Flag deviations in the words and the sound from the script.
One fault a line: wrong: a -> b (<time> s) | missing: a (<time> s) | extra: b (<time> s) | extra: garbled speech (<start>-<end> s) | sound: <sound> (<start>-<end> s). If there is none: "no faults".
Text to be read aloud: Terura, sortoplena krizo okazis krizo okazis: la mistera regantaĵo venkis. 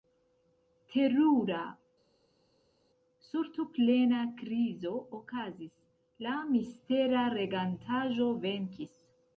missing: krizo okazis (5.7 s)